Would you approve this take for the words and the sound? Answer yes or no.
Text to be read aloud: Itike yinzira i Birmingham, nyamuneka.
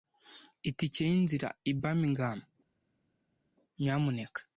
yes